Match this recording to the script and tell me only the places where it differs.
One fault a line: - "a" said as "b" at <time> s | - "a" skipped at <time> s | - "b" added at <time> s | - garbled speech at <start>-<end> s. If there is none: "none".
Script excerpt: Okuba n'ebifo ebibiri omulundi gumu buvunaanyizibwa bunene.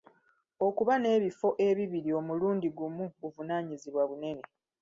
none